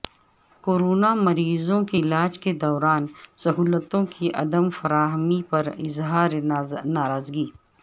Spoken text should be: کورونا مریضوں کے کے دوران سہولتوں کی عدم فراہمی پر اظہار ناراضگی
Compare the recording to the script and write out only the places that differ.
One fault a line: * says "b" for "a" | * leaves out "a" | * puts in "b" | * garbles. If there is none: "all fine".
* puts in "علاج"